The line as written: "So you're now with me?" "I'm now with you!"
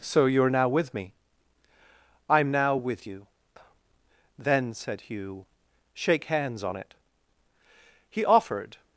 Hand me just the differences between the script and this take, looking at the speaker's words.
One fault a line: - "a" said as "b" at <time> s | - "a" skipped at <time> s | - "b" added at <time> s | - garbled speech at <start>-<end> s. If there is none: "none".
- "Then said Hugh shake hands on it He offered" added at 4.4 s